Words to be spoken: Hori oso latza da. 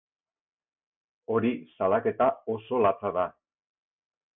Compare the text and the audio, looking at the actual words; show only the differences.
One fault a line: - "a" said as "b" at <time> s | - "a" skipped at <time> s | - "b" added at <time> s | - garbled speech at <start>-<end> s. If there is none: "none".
- "salaketa" added at 1.8 s